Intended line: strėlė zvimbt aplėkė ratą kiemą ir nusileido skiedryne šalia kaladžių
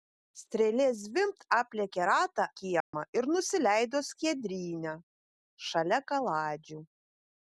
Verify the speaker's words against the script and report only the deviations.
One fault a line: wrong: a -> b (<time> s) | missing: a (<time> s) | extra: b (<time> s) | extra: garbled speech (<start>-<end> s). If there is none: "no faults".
no faults